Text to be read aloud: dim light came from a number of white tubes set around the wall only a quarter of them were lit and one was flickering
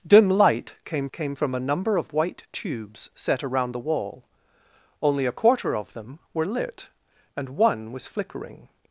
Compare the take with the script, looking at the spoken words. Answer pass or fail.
fail